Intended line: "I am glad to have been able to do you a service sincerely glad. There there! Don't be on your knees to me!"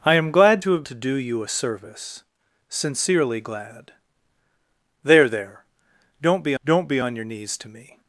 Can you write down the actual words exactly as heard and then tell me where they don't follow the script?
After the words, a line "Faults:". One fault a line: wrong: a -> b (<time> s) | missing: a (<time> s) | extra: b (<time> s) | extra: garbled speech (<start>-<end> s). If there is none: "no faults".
"I am glad to have to do you a service sincerely glad. There there! Don't be don't be on your knees to me!"
Faults:
missing: been able (0.8 s)
extra: don't be (6.6 s)